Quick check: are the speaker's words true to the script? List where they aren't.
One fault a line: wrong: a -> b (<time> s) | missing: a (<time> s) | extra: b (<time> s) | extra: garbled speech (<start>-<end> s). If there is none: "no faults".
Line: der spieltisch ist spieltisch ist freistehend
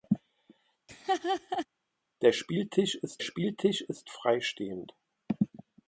no faults